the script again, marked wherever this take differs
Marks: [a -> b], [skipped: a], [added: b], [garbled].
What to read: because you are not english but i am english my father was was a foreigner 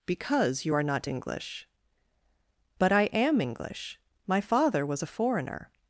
because you are not english but i am english my father was [skipped: was] a foreigner